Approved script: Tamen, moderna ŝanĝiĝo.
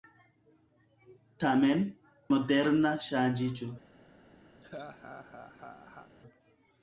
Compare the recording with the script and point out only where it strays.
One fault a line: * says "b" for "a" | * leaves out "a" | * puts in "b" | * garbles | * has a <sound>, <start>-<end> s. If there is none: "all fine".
* has a laugh, 4.6-6.1 s